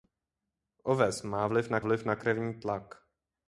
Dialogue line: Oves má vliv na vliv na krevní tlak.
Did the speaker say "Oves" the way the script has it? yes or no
yes